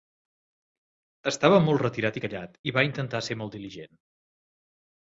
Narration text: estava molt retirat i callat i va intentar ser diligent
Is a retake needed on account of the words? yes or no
yes